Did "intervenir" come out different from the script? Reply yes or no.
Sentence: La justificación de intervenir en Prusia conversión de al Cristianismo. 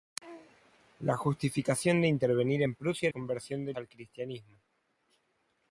no